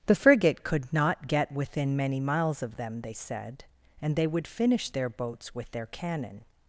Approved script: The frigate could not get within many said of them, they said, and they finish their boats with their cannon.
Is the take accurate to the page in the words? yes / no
no